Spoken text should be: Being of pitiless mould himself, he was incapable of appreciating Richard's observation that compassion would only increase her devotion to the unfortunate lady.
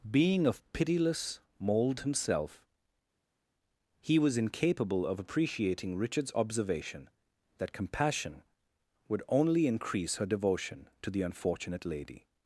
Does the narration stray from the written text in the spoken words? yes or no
no